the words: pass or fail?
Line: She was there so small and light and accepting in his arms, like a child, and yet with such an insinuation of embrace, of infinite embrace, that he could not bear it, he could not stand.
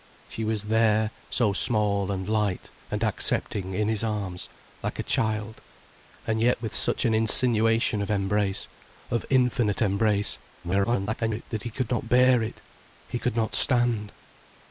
fail